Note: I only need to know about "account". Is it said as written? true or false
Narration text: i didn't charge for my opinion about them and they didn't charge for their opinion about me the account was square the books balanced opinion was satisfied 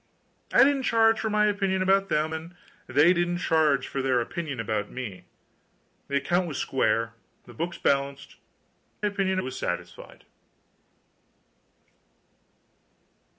true